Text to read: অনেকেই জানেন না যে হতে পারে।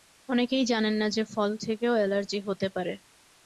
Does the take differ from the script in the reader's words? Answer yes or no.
yes